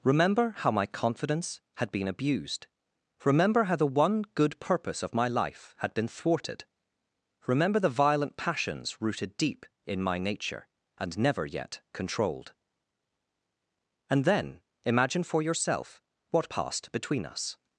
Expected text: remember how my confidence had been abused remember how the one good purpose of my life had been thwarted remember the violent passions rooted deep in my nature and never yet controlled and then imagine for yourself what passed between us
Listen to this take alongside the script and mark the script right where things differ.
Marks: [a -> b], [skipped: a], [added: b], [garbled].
remember how my confidence had been abused remember how the one good purpose of my life had been thwarted remember the violent passions rooted deep in my nature and never yet controlled and then imagine for yourself what passed between us